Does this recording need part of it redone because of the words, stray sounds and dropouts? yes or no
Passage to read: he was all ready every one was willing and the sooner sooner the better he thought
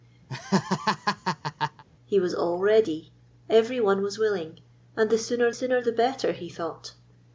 yes